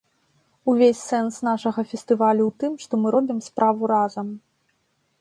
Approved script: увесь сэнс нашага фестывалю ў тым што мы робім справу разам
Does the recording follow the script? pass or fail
pass